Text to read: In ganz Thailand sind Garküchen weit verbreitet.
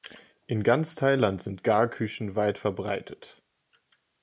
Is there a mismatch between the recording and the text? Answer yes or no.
no